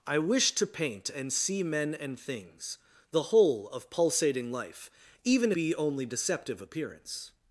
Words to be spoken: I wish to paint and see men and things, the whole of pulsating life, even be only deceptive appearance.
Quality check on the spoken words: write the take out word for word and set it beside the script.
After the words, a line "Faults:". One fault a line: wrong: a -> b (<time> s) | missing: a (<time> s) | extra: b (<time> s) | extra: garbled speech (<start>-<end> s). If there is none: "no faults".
I wish to paint and see men and things, the whole of pulsating life, even be only deceptive appearance.
Faults:
no faults